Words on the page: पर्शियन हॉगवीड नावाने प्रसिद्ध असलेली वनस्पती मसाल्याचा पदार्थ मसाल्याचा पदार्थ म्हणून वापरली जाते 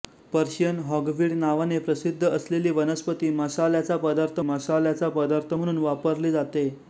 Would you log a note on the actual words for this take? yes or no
no